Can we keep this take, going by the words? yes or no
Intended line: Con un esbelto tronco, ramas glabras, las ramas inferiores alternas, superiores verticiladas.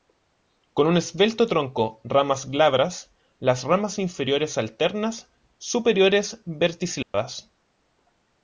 yes